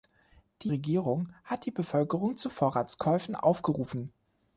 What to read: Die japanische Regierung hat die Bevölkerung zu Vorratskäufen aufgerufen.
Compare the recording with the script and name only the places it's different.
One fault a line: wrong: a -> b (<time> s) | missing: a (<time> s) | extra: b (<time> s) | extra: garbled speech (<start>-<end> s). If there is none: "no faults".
missing: japanische (0.7 s)